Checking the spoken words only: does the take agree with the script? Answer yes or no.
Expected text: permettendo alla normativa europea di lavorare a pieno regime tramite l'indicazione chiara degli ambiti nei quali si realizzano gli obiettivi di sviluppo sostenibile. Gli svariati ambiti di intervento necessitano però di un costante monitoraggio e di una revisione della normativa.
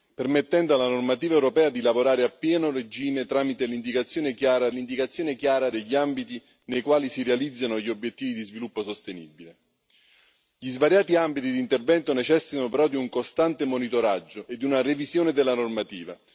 no